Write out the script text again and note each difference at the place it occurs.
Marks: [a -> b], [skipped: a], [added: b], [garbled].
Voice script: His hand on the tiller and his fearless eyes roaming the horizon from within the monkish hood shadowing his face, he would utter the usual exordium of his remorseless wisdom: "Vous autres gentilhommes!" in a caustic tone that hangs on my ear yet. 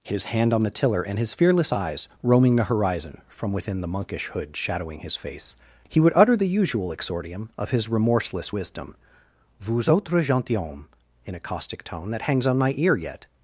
His hand on the tiller and his fearless eyes roaming the horizon from within the monkish hood shadowing his face, he would utter the usual exordium of his remorseless wisdom: "Vous autres gentilhommes!" in a caustic tone that hangs on my ear yet.